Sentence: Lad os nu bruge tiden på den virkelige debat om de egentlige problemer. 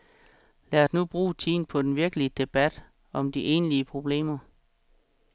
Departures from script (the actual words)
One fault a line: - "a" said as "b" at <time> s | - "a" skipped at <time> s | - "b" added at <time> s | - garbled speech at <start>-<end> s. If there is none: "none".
none